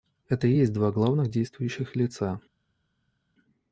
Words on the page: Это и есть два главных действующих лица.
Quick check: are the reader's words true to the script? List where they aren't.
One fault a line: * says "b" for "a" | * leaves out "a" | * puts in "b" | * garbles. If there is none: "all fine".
all fine